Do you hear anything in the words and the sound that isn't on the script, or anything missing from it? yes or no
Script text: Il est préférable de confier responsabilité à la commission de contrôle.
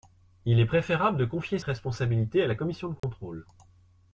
yes